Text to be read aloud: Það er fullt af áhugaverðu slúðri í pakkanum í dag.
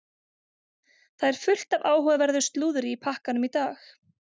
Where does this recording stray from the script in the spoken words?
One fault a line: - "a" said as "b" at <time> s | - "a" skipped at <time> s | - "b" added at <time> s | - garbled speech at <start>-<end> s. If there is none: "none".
none